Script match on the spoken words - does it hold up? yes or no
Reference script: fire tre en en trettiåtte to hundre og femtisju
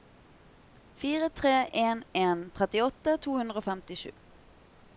yes